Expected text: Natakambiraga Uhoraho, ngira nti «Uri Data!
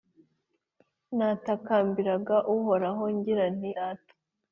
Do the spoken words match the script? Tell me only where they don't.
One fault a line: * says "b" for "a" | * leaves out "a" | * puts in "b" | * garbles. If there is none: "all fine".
* leaves out "Uri"